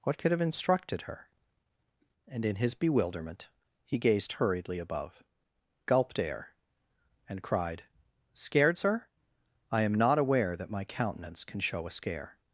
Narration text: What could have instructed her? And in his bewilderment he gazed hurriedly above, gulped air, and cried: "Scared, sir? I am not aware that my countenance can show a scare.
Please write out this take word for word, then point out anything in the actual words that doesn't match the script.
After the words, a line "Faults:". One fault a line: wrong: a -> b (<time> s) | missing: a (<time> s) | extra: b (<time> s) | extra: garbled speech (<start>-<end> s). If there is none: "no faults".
What could have instructed her? And in his bewilderment he gazed hurriedly above, gulped air, and cried: "Scared, sir? I am not aware that my countenance can show a scare.
Faults:
no faults